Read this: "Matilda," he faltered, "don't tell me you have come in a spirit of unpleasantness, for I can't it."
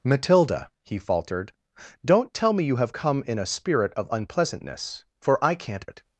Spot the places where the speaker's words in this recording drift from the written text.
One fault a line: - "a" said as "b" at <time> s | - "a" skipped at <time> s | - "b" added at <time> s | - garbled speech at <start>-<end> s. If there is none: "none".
none